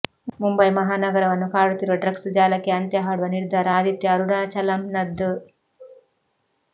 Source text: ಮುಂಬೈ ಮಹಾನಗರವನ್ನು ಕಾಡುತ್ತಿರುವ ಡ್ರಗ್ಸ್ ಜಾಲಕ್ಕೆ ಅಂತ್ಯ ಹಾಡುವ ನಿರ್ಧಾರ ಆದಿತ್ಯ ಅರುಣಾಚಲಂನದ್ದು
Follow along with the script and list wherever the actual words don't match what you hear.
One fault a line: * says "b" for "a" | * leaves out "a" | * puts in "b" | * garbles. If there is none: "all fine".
all fine